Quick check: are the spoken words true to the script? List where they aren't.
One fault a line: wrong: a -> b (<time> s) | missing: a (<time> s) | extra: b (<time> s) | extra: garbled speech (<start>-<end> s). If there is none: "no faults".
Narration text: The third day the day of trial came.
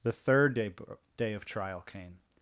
missing: the (0.7 s)